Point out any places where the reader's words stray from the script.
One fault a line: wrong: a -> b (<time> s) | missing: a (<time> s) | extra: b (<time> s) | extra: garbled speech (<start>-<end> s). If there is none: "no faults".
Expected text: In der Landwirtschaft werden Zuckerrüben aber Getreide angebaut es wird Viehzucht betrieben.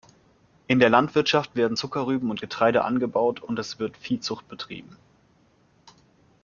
wrong: aber -> und (2.3 s)
extra: und (3.4 s)